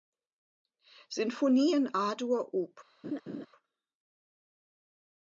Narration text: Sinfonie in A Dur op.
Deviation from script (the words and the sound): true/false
true